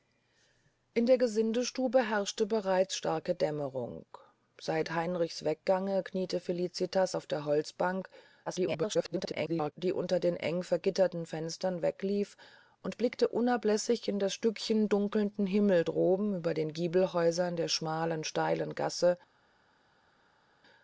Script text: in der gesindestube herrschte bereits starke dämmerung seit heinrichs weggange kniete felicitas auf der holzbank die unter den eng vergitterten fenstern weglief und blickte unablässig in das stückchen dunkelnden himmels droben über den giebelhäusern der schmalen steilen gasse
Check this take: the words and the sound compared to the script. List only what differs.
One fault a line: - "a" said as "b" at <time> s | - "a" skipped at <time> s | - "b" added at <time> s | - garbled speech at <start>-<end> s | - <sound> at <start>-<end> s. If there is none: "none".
- garbled speech at 8.5-9.7 s